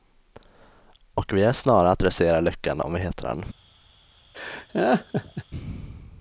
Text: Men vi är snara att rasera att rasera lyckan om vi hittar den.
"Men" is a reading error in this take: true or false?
true